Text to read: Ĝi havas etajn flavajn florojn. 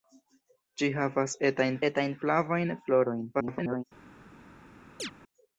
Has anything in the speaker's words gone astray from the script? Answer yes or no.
yes